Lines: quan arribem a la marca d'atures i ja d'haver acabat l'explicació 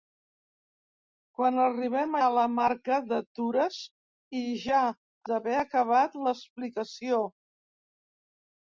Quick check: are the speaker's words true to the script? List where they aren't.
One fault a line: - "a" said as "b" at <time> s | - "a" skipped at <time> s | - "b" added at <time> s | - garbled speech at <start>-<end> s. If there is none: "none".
none